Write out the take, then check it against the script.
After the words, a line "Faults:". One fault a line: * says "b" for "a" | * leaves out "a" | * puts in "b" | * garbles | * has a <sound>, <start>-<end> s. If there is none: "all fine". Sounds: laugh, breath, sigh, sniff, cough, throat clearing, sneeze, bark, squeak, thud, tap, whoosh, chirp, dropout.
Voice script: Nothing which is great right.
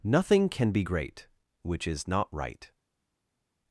Nothing can be great which is not right.
Faults:
* puts in "can be great"
* says "not" for "great"